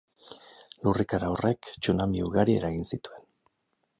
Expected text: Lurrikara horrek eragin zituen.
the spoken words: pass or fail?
fail